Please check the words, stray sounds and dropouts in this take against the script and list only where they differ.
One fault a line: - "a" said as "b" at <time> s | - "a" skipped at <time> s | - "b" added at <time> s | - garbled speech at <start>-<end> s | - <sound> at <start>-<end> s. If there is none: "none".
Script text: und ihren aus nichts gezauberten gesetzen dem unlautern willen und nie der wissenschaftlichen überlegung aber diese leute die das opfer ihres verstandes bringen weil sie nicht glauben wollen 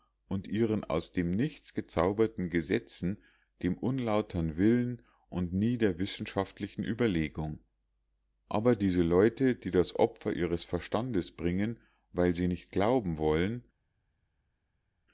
- "dem" added at 1.1 s